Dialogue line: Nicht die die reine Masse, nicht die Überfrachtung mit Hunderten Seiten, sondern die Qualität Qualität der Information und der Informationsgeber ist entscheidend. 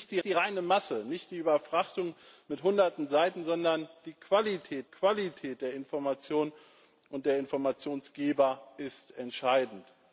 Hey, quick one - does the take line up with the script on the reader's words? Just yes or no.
yes